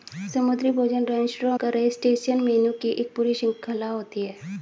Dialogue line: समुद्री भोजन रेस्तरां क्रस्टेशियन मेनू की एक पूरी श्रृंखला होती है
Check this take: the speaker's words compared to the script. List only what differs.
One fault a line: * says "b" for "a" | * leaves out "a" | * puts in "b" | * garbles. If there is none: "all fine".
all fine